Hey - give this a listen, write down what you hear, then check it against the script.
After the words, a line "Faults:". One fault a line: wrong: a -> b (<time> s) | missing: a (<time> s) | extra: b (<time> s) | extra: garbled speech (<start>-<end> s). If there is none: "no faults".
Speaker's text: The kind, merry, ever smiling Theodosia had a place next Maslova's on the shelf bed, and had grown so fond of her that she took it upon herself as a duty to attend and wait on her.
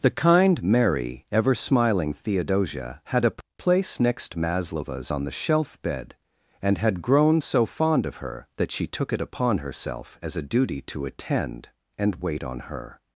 The kind, merry, ever smiling Theodosia had a place next Maslova's on the shelf bed, and had grown so fond of her that she took it upon herself as a duty to attend and wait on her.
Faults:
no faults